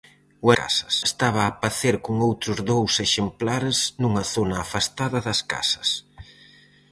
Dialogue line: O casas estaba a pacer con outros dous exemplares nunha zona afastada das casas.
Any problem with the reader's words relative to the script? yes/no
no